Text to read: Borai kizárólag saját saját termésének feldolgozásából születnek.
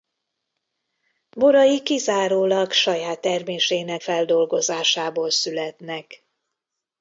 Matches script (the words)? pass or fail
fail